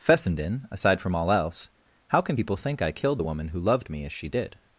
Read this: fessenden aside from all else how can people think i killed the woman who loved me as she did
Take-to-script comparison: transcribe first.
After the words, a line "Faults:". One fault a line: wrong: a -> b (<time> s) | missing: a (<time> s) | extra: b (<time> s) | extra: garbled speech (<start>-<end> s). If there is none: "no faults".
fessenden aside from all else how can people think i killed the woman who loved me as she did
Faults:
no faults